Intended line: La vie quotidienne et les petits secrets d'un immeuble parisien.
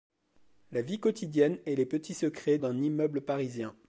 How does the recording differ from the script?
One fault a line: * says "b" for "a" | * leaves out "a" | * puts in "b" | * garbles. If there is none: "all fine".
all fine